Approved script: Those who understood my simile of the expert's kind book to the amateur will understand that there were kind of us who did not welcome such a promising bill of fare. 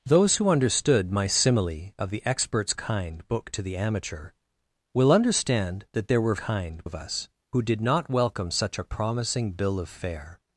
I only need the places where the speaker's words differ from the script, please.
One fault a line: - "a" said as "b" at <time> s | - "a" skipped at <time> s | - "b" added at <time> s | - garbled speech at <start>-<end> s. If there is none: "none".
none